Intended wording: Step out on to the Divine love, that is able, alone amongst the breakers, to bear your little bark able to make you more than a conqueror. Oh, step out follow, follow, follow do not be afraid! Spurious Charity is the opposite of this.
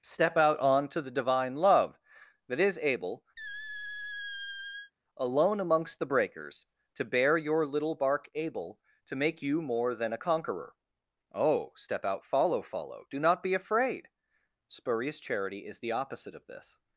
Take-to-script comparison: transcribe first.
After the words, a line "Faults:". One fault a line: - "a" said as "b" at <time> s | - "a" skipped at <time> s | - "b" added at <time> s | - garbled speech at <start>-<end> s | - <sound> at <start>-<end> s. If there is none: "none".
Step out on to the Divine love, that is able, alone amongst the breakers, to bear your little bark able to make you more than a conqueror. Oh, step out follow, follow do not be afraid! Spurious Charity is the opposite of this.
Faults:
- squeak at 3.4-4.9 s
- "follow" skipped at 13.0 s